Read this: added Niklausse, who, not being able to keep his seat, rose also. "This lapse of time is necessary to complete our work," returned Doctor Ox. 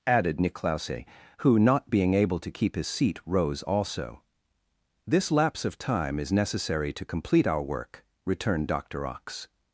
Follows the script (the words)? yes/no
yes